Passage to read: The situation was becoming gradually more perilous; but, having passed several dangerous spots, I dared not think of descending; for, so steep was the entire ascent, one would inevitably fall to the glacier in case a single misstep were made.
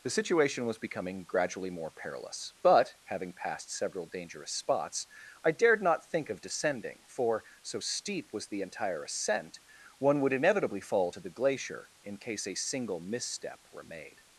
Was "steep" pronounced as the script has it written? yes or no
yes